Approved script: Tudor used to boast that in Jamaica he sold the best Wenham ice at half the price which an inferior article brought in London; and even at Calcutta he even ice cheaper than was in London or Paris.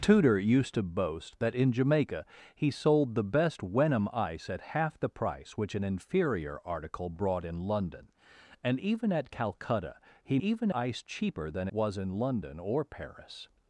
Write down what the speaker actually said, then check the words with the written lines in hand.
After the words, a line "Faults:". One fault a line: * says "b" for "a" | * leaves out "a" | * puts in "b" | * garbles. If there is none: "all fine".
Tudor used to boast that in Jamaica he sold the best Wenham ice at half the price which an inferior article brought in London; and even at Calcutta he even ice cheaper than was in London or Paris.
Faults:
all fine